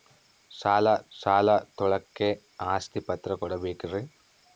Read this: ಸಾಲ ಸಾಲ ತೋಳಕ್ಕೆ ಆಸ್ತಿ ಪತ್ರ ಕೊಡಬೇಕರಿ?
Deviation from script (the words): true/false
false